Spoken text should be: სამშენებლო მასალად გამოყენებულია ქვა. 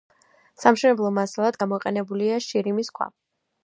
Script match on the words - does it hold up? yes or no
no